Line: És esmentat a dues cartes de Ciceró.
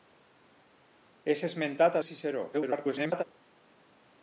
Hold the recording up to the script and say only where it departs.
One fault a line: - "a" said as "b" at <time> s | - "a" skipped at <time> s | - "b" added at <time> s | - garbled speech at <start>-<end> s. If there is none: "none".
- "dues cartes" skipped at 2.0 s
- garbled speech at 2.5-3.2 s